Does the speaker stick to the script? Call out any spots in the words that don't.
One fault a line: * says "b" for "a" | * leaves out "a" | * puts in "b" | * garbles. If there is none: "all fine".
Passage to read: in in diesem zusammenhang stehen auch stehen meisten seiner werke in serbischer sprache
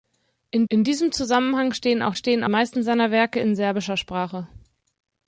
all fine